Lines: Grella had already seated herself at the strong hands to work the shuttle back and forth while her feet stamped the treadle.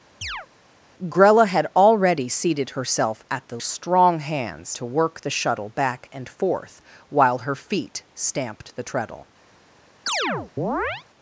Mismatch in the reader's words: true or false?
false